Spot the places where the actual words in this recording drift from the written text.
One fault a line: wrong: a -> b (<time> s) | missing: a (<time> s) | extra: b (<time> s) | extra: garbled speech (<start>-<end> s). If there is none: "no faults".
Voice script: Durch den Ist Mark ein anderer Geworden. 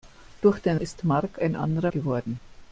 no faults